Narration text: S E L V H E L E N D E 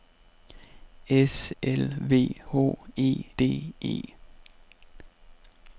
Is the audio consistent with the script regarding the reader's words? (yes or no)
no